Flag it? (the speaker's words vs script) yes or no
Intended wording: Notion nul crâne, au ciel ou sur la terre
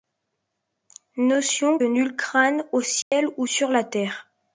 no